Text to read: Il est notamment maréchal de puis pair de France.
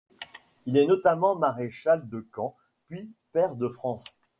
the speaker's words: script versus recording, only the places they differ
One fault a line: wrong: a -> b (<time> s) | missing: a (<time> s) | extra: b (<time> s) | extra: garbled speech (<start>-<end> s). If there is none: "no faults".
extra: camp (2.2 s)